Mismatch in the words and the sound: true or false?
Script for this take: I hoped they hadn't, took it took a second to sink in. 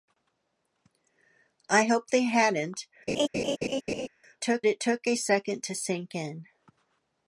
true